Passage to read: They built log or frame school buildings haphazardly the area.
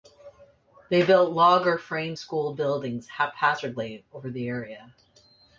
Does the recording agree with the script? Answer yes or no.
no